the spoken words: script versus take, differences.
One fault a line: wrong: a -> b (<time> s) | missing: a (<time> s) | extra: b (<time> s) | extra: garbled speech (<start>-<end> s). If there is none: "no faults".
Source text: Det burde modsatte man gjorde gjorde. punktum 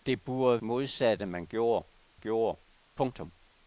no faults